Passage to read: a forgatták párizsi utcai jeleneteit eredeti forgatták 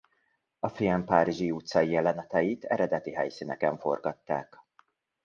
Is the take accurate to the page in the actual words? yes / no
no